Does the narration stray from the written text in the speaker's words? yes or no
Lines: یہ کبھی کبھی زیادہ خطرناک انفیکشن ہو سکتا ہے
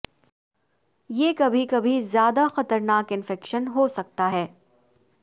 no